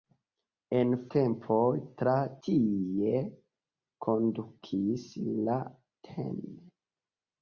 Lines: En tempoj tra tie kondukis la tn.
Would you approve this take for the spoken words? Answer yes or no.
yes